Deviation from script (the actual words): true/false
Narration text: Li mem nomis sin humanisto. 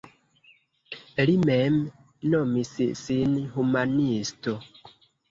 false